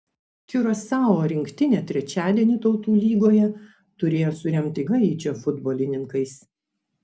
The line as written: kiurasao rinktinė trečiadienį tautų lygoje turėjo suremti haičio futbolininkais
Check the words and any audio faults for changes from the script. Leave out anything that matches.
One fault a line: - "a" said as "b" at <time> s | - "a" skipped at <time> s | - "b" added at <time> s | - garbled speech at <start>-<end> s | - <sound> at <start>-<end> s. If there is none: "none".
none